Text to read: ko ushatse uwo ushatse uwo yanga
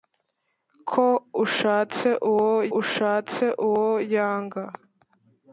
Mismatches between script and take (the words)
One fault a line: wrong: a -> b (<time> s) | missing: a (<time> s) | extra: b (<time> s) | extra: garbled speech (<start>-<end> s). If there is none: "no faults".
no faults